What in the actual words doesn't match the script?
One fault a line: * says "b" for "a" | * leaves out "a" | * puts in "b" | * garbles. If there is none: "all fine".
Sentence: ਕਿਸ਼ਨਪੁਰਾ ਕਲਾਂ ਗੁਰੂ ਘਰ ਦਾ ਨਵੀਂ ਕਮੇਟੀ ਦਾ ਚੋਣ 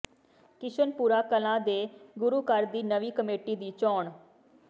* puts in "ਦੇ"
* says "ਦੀ" for "ਦਾ"
* says "ਦੀ" for "ਦਾ"